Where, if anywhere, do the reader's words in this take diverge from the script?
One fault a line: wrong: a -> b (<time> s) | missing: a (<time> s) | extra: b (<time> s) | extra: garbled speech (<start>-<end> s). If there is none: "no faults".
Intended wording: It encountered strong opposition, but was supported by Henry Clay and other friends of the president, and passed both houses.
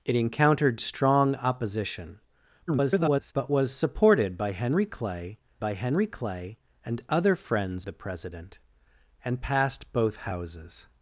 extra: garbled speech (2.7-3.3 s)
extra: by Henry Clay (5.6 s)
missing: of (7.9 s)